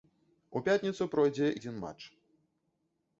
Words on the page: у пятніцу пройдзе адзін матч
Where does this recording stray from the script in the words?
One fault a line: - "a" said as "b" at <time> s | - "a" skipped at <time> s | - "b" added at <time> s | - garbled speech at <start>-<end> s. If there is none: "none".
none